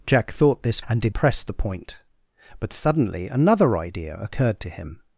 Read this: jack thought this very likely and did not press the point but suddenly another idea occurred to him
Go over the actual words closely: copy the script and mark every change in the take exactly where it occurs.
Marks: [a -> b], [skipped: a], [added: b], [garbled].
jack thought this [skipped: very likely] and did [skipped: not] press the point but suddenly another idea occurred to him